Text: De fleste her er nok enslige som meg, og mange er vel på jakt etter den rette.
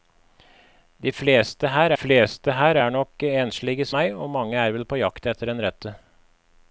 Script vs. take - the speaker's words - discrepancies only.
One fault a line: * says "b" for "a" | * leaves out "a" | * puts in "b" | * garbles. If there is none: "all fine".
* puts in "fleste her"
* leaves out "som"